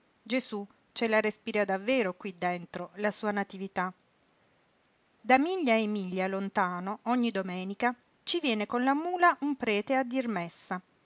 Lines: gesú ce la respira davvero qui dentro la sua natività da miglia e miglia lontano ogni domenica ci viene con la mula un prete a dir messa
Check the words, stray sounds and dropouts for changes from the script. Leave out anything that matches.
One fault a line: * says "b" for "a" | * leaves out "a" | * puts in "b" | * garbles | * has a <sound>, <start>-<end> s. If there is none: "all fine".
all fine